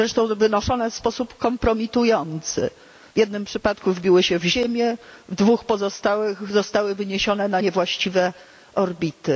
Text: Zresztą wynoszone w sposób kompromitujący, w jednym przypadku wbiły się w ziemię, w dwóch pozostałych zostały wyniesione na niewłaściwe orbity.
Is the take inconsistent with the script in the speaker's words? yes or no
no